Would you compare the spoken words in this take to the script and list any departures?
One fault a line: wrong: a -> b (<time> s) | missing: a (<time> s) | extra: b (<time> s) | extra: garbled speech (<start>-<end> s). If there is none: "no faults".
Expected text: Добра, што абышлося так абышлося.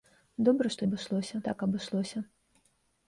no faults